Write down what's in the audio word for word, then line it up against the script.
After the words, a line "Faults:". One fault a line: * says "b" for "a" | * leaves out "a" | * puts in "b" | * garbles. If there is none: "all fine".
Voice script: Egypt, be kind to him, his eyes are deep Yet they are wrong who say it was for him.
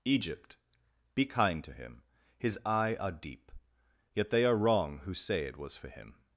Egypt, be kind to him, his eye are deep Yet they are wrong who say it was for him.
Faults:
* says "eye" for "eyes"